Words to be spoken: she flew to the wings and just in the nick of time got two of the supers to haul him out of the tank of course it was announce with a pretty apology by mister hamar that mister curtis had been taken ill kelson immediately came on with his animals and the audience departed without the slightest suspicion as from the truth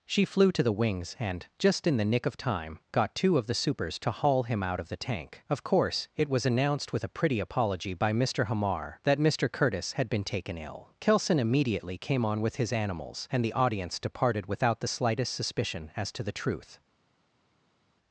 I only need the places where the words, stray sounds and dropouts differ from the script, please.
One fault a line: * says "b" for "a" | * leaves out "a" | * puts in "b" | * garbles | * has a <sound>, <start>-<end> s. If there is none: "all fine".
* says "announced" for "announce"
* says "to" for "from"